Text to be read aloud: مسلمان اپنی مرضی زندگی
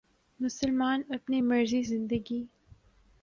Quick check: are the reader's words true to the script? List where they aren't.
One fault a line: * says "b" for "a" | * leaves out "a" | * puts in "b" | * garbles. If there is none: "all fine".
all fine